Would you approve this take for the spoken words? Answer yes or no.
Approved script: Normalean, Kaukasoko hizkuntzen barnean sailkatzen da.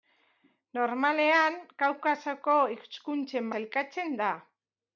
no